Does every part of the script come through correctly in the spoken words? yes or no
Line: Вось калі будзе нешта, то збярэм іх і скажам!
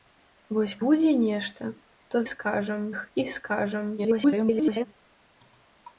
no